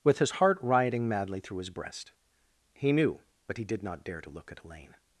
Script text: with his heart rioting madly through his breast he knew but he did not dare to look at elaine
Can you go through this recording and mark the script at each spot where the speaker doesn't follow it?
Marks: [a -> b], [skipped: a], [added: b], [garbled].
with his heart rioting madly through his breast he knew but he did not dare to look at elaine